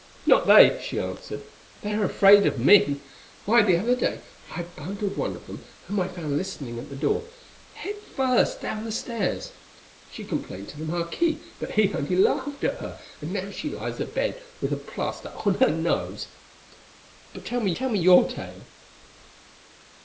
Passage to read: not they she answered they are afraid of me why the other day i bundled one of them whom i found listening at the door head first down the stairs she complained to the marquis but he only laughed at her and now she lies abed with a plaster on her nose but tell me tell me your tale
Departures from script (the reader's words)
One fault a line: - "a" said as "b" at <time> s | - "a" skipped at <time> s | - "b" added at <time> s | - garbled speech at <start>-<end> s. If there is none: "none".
none